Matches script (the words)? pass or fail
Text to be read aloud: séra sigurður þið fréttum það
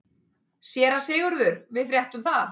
fail